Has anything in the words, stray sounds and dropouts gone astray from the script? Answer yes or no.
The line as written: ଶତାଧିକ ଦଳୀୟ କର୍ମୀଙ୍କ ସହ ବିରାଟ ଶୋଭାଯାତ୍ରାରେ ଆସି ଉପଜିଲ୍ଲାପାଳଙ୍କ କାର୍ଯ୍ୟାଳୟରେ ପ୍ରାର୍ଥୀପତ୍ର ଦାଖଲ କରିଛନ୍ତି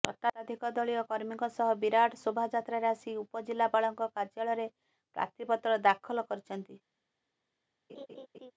yes